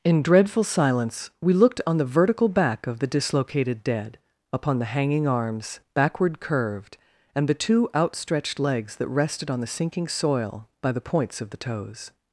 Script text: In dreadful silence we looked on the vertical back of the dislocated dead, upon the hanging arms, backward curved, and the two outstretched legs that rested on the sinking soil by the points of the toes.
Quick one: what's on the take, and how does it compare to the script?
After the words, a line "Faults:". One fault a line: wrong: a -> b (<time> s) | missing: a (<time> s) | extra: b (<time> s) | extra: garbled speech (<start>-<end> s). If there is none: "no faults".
In dreadful silence we looked on the vertical back of the dislocated dead, upon the hanging arms, backward curved, and the two outstretched legs that rested on the sinking soil by the points of the toes.
Faults:
no faults